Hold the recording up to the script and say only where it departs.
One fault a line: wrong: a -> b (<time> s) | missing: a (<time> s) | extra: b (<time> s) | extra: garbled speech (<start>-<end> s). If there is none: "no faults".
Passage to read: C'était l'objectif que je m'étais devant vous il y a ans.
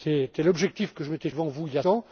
no faults